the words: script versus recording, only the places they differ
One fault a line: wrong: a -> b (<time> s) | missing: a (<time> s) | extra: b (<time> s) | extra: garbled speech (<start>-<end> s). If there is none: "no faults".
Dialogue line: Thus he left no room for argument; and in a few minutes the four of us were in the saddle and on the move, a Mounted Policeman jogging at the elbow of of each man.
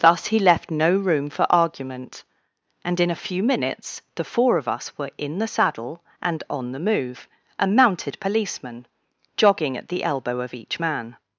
missing: of (10.6 s)